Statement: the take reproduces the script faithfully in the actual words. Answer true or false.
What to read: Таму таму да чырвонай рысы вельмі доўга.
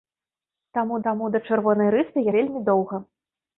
true